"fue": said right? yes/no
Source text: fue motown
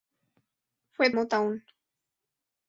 yes